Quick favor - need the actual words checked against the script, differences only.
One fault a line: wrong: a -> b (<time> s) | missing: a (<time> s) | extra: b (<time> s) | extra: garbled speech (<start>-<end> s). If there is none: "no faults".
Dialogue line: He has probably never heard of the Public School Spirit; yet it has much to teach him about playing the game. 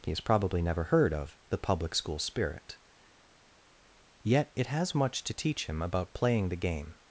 no faults